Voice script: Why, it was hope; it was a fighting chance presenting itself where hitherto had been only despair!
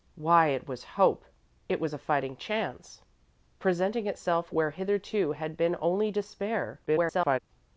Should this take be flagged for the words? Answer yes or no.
yes